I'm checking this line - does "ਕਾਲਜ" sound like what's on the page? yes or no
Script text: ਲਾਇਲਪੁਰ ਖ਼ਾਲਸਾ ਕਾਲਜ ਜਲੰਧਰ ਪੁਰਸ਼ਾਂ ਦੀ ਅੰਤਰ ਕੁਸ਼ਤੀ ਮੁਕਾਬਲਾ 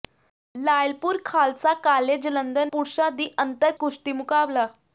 yes